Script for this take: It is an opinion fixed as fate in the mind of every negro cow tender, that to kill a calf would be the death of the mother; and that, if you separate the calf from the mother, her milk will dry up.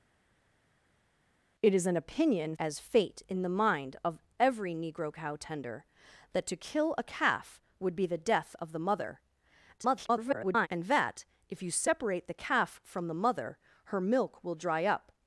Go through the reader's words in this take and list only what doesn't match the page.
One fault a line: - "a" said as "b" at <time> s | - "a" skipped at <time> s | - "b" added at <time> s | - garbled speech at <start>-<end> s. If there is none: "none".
- "fixed" skipped at 2.5 s
- garbled speech at 9.8-10.7 s